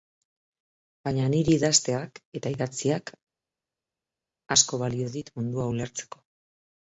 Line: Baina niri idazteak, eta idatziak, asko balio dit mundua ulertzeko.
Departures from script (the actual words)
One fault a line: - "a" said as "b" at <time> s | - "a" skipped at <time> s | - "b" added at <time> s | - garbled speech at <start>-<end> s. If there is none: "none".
none